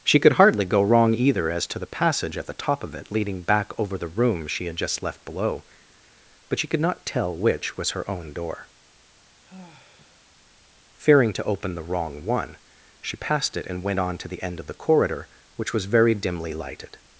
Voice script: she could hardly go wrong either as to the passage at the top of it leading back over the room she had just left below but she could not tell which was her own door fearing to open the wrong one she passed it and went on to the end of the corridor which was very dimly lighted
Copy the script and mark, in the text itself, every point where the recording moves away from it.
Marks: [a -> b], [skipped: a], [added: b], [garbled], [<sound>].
she could hardly go wrong either as to the passage at the top of it leading back over the room she had just left below but she could not tell which was her own door [sigh] fearing to open the wrong one she passed it and went on to the end of the corridor which was very dimly lighted